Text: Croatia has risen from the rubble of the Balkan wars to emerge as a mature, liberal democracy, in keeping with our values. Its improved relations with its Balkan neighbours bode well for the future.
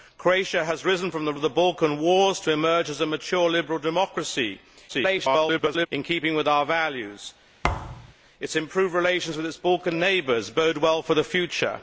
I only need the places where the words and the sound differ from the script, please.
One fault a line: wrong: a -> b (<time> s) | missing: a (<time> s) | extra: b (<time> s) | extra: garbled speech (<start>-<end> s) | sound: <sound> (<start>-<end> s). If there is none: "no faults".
missing: rubble (1.3 s)
extra: garbled speech (4.9-5.9 s)
sound: thud (7.6-8.1 s)